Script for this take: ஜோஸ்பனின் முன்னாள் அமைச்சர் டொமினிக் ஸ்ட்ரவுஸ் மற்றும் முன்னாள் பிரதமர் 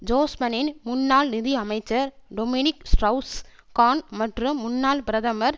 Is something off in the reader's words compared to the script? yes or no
yes